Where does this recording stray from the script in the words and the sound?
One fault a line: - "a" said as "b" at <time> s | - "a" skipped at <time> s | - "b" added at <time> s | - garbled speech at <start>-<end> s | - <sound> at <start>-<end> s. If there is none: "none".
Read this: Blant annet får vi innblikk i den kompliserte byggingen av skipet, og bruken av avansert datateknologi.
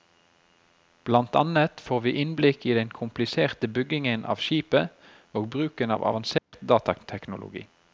- dropout at 6.4-6.5 s